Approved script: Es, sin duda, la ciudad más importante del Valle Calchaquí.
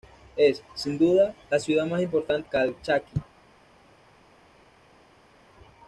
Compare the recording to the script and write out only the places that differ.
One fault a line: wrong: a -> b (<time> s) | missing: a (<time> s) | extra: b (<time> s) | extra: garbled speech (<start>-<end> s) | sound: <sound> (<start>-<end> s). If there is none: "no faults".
missing: del Valle (2.5 s)